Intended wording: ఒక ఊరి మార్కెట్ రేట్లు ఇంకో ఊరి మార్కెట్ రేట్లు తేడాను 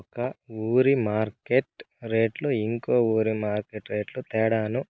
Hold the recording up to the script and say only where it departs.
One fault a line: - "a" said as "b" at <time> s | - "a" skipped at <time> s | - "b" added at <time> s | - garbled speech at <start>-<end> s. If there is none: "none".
none